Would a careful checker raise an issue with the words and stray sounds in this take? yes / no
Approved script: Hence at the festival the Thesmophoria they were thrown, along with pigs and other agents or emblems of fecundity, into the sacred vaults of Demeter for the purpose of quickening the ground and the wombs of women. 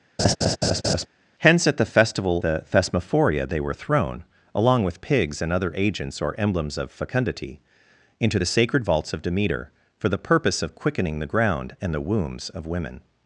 yes